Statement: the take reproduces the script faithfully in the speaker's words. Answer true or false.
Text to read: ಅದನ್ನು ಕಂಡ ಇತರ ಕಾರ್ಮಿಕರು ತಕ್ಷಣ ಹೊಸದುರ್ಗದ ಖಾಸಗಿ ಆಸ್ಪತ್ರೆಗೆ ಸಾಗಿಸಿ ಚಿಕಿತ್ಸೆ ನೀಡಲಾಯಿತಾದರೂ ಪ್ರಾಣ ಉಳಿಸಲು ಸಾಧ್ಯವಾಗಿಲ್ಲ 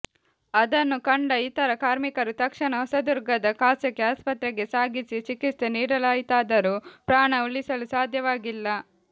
true